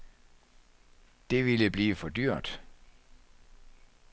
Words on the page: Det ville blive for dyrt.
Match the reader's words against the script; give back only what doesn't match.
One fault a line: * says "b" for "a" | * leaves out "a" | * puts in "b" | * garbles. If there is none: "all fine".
all fine